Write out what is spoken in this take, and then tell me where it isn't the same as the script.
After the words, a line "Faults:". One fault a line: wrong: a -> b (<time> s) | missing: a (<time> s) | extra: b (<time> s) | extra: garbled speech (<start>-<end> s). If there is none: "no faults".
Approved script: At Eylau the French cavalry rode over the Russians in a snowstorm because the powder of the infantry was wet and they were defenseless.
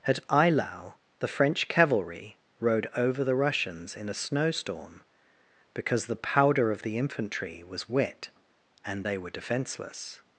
At Eylau the French cavalry rode over the Russians in a snowstorm because the powder of the infantry was wet and they were defenseless.
Faults:
no faults